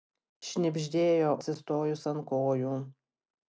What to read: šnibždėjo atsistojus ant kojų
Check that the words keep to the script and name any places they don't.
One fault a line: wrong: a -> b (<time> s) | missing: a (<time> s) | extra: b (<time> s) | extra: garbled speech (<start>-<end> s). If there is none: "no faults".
no faults